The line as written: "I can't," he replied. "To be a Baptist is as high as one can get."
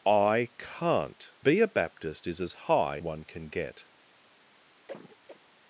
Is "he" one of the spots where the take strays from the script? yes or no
yes